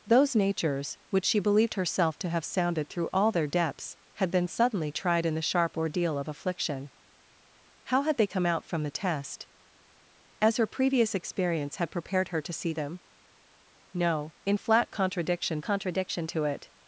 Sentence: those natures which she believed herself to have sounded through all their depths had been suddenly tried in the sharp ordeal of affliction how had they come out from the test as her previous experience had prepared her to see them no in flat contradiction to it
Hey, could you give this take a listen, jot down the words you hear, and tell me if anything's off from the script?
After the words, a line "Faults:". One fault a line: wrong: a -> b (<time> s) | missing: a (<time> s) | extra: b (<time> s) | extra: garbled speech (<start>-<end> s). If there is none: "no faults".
those natures which she believed herself to have sounded through all their depths had been suddenly tried in the sharp ordeal of affliction how had they come out from the test as her previous experience had prepared her to see them no in flat contradiction contradiction to it
Faults:
extra: contradiction (15.6 s)